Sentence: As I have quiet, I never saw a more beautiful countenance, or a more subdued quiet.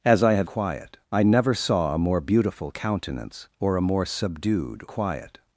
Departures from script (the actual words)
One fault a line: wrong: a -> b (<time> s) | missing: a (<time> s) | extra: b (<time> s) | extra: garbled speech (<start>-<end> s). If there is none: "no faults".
no faults